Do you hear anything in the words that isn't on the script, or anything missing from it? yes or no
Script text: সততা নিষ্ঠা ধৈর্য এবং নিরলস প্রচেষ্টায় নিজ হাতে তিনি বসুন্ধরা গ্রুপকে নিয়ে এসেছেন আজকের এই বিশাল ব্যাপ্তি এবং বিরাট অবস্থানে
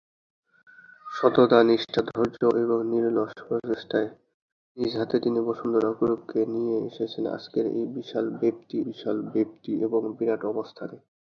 yes